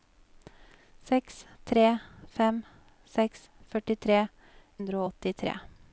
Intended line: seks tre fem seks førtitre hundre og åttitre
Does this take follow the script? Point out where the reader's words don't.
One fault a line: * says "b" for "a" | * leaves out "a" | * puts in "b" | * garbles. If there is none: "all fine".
all fine